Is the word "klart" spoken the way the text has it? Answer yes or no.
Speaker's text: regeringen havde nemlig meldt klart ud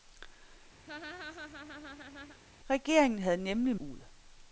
no